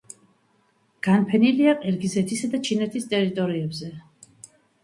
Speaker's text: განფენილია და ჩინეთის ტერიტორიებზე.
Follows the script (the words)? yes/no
no